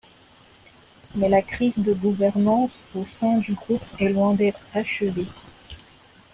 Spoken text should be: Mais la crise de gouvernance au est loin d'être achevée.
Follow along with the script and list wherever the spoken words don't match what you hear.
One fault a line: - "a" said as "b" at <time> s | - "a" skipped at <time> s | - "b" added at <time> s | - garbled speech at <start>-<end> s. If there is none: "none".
- "sein du groupe" added at 3.2 s